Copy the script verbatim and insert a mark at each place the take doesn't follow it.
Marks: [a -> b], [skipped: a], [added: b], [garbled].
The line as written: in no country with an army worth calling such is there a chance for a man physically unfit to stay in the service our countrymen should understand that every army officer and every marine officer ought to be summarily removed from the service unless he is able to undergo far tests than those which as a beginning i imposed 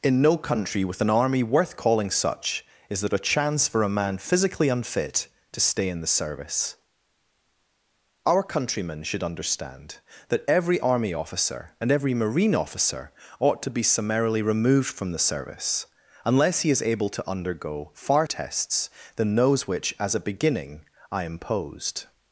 in no country with an army worth calling such is there a chance for a man physically unfit to stay in the service our countrymen should understand that every army officer and every marine officer ought to be summarily removed from the service unless he is able to undergo far tests than those which as a beginning i imposed